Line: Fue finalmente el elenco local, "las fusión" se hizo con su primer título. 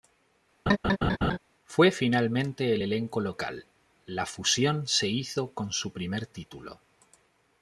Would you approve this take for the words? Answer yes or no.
no